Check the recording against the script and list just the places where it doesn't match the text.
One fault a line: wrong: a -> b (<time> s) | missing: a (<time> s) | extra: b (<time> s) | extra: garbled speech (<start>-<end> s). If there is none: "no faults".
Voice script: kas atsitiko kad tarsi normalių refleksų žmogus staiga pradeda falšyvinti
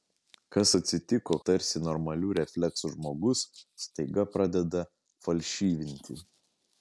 missing: kad (1.4 s)